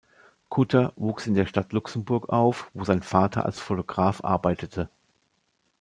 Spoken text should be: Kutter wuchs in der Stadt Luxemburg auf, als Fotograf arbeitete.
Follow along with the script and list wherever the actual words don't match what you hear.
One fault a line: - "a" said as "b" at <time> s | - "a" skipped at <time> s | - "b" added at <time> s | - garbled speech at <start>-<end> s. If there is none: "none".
- "wo sein Vater" added at 2.7 s